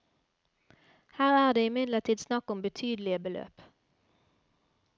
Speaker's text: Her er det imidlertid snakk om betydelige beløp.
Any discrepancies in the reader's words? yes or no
no